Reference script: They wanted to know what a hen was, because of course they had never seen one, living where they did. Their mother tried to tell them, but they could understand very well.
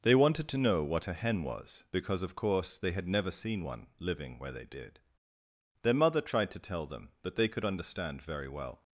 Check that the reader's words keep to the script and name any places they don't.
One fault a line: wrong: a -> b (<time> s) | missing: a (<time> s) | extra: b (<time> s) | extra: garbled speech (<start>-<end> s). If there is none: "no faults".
no faults